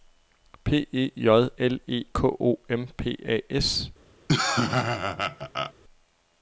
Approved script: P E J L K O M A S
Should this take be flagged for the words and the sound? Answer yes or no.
yes